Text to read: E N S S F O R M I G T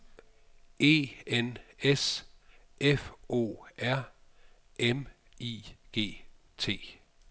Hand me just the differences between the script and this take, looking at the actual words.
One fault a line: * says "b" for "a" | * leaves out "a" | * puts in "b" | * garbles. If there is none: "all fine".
* leaves out "S"